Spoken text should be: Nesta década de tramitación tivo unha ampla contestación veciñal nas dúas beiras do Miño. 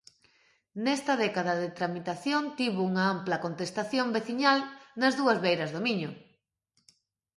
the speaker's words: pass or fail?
pass